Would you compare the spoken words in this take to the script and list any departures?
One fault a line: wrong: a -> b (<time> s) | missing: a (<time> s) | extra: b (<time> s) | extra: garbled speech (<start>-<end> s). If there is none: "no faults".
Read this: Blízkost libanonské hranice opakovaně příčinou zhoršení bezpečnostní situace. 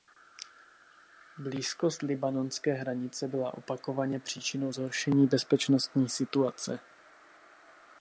extra: byla (3.3 s)